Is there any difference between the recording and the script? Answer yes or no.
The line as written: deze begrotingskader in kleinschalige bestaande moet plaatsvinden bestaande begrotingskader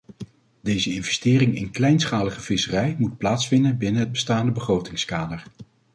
yes